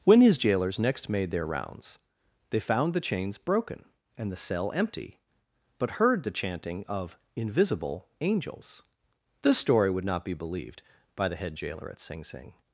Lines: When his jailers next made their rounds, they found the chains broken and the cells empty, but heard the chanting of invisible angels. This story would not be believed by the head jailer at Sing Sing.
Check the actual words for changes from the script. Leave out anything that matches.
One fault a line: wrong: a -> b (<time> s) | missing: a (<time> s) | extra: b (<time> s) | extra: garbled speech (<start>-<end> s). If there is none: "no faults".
wrong: cells -> cell (4.3 s)